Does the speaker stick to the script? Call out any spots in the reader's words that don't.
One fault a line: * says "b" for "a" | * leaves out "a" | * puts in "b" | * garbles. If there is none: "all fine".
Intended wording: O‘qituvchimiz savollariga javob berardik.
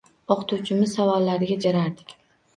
* leaves out "javob"